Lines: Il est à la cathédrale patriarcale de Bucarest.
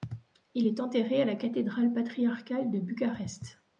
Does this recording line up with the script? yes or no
no